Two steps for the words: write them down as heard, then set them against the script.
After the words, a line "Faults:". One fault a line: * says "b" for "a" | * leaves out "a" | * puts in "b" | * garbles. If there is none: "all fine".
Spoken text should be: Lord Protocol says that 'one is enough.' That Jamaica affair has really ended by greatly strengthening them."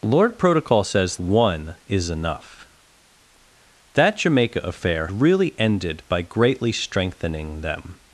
Lord Protocol says 'one is enough.' That Jamaica affair really ended by greatly strengthening them."
Faults:
* leaves out "that"
* leaves out "has"